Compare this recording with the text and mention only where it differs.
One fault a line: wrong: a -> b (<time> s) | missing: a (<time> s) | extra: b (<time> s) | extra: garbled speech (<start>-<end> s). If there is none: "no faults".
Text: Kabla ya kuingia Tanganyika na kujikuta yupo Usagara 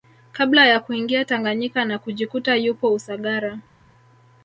no faults